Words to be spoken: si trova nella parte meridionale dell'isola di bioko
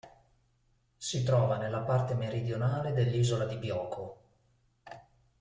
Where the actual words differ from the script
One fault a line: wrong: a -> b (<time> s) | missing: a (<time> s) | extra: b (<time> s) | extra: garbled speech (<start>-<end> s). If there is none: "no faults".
no faults